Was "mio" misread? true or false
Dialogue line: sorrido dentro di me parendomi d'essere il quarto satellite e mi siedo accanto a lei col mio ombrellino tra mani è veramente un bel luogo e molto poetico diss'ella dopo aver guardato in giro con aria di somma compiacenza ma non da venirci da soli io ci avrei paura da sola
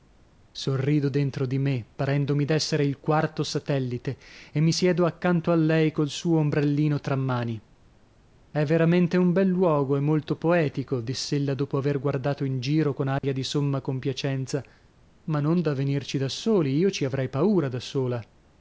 true